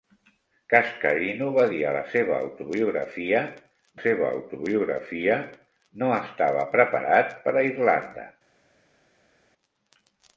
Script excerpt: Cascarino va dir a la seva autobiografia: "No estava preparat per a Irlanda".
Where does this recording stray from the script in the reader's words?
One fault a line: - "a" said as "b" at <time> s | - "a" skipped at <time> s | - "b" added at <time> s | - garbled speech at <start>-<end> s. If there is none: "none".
- "seva autobiografia" added at 4.1 s